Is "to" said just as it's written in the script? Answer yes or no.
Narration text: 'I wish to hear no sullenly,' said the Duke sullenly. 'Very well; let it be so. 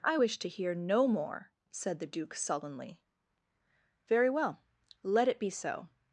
yes